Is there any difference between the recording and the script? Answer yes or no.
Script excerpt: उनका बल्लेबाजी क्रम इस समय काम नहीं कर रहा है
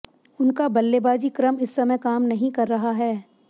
no